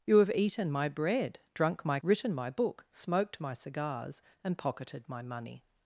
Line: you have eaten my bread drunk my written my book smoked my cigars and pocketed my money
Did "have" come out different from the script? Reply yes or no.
no